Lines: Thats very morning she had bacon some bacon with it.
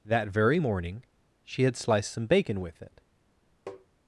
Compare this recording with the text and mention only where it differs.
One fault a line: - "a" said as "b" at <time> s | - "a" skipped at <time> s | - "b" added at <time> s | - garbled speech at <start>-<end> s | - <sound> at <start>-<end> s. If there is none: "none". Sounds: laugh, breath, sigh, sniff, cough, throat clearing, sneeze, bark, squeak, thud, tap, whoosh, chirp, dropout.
- "Thats" said as "That" at 0.0 s
- "bacon" said as "sliced" at 1.7 s
- tap at 3.7-3.9 s